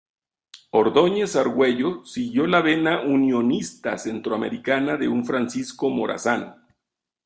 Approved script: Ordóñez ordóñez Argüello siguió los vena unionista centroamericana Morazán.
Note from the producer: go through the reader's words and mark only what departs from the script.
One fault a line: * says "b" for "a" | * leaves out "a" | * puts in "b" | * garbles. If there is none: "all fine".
* leaves out "ordóñez"
* says "la" for "los"
* puts in "de un Francisco"